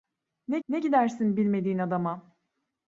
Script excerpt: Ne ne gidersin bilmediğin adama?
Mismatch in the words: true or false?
false